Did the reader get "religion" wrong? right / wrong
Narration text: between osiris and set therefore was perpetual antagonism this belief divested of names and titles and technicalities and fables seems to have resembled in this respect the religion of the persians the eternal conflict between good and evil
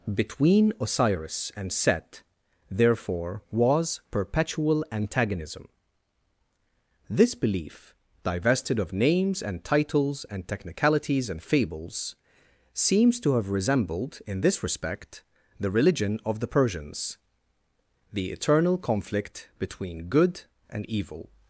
right